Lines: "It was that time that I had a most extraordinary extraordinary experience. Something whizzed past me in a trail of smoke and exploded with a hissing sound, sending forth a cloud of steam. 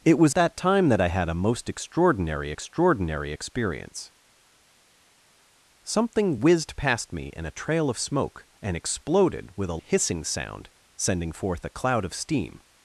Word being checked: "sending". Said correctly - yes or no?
yes